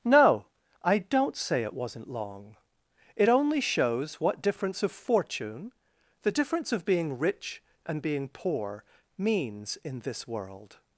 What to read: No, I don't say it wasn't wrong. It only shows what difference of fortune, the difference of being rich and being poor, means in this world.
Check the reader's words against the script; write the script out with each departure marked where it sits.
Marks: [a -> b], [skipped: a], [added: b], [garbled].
No, I don't say it wasn't [wrong. -> long] It only shows what difference of fortune, the difference of being rich and being poor, means in this world.